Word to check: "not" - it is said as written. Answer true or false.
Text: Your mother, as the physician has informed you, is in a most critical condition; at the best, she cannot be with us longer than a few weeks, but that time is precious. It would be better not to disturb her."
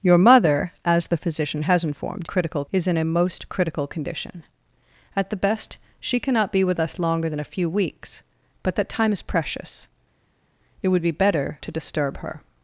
false